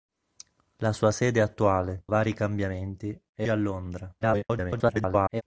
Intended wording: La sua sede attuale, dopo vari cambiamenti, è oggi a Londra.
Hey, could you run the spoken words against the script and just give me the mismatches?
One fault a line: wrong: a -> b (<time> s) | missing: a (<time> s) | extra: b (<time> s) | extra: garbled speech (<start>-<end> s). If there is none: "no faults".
missing: dopo (2.0 s)
missing: oggi (3.5 s)
extra: garbled speech (4.2-5.4 s)